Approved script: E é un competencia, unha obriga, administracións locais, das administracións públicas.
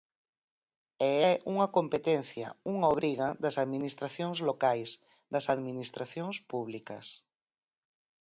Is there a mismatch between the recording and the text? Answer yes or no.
yes